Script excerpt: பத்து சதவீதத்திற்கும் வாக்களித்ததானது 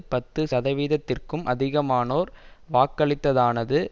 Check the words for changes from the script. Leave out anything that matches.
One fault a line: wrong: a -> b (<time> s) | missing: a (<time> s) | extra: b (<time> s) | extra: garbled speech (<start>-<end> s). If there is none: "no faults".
extra: அதிகமானோர் (1.4 s)